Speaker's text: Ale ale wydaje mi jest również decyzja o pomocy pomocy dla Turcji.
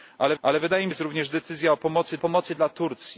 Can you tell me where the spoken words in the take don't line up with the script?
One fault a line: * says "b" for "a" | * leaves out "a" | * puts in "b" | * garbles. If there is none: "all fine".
all fine